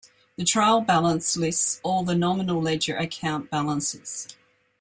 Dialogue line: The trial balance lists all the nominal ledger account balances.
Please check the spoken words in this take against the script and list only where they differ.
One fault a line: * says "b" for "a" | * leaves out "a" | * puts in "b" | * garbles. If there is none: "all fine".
all fine